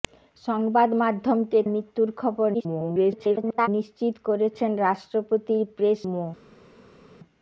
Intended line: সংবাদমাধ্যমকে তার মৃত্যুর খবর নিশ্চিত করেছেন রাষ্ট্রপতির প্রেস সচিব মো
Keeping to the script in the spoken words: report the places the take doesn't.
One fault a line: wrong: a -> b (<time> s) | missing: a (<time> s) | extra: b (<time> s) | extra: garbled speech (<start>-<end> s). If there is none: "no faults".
missing: তার (1.6 s)
extra: garbled speech (2.5-3.7 s)
missing: সচিব (6.0 s)